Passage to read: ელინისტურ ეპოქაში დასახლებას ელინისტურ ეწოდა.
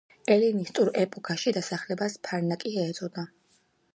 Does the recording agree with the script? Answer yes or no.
no